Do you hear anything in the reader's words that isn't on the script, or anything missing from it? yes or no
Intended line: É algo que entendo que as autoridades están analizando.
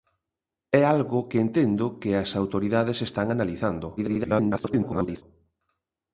yes